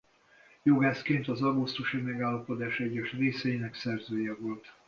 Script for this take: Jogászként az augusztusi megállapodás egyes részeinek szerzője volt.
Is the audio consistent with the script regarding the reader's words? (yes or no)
yes